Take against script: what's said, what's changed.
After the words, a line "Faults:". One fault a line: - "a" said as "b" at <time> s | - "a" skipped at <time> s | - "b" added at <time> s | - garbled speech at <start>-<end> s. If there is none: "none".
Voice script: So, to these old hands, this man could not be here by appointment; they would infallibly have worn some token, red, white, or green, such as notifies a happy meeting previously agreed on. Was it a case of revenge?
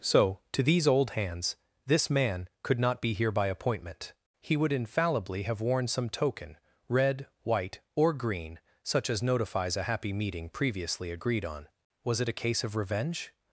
So, to these old hands, this man could not be here by appointment; he would infallibly have worn some token, red, white, or green, such as notifies a happy meeting previously agreed on. Was it a case of revenge?
Faults:
- "they" said as "he" at 4.4 s